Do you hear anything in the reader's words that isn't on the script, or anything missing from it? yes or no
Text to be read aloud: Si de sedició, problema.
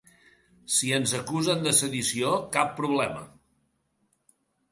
yes